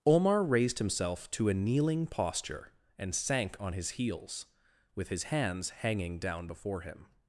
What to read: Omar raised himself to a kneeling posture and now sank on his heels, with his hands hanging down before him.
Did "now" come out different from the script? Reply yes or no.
yes